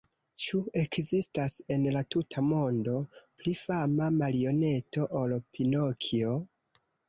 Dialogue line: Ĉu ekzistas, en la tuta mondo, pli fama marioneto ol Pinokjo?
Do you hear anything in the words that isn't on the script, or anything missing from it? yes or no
no